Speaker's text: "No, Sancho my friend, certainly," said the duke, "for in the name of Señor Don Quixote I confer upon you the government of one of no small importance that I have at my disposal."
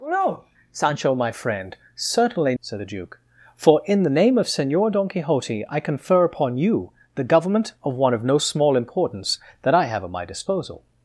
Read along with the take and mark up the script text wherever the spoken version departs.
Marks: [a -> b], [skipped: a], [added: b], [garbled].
"No, Sancho my friend, certainly," said the duke, "for in the name of Señor Don Quixote I confer upon you the government of one of no small importance that I have at my disposal."